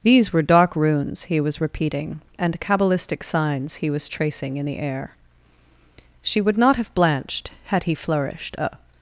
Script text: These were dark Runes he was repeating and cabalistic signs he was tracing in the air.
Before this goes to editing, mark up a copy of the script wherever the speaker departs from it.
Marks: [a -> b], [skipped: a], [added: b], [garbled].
These were dark Runes he was repeating and cabalistic signs he was tracing in the air. [added: She would not have blanched had he flourished a]